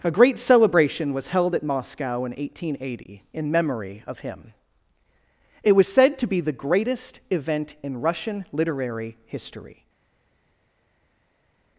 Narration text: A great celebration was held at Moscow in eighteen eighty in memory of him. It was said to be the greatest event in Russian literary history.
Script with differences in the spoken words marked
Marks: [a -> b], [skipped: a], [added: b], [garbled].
A great celebration was held at Moscow in eighteen eighty in memory of him. It was said to be the greatest event in Russian literary history.